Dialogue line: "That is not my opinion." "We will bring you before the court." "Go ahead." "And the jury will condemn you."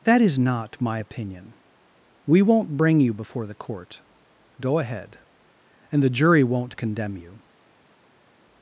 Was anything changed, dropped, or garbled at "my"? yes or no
no